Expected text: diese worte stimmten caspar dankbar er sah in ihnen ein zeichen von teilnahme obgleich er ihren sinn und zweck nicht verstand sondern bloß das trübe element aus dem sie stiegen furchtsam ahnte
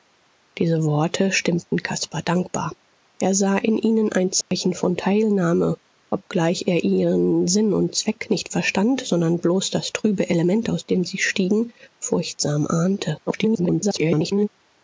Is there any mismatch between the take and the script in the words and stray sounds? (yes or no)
yes